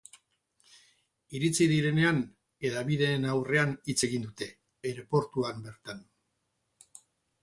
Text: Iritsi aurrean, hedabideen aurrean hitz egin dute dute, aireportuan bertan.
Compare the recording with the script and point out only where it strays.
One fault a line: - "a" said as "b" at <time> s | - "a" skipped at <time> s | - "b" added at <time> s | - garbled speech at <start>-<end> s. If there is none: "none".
- "aurrean" said as "direnean" at 1.7 s
- "dute" skipped at 4.5 s